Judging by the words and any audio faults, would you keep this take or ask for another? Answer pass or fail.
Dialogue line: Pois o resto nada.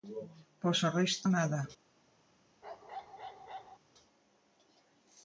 fail